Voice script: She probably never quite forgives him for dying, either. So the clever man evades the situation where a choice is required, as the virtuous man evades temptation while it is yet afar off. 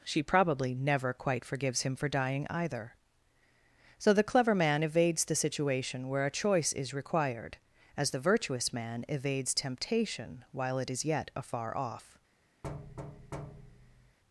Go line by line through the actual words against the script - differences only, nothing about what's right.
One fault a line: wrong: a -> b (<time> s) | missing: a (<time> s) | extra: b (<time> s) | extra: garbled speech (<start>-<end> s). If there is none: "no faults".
no faults